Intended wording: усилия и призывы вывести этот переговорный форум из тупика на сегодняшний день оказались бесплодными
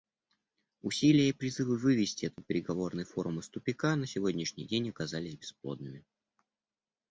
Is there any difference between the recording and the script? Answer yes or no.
no